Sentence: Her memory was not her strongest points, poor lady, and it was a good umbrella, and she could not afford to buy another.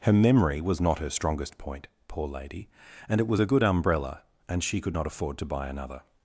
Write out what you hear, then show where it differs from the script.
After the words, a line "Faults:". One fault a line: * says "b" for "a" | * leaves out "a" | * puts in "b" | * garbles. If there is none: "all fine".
Her memory was not her strongest point, poor lady, and it was a good umbrella, and she could not afford to buy another.
Faults:
* says "point" for "points"